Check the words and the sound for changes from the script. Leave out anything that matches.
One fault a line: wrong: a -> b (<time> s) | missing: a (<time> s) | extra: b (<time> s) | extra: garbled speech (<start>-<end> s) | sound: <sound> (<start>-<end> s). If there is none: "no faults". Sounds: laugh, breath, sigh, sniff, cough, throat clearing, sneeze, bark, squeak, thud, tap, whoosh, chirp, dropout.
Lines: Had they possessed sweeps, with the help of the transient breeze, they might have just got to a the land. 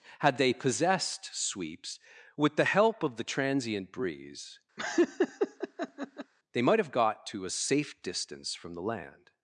sound: laugh (4.8-6.3 s)
missing: just (6.9 s)
extra: safe distance from (7.5 s)